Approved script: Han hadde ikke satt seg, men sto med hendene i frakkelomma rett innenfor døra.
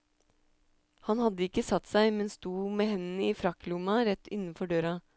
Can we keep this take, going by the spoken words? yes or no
yes